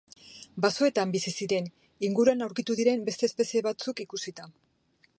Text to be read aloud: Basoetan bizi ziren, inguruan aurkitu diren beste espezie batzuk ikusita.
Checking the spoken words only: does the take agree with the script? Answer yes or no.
yes